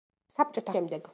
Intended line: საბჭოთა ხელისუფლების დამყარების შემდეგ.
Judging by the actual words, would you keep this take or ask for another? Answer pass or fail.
fail